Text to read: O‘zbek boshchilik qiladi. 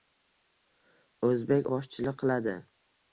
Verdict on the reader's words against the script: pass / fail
pass